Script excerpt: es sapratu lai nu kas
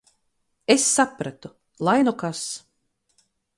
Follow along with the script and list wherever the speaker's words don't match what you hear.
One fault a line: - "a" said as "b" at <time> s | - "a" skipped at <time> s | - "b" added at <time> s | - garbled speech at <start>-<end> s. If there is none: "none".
none